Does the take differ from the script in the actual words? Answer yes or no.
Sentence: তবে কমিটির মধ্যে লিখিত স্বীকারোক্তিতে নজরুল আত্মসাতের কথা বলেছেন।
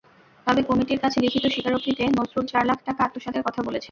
yes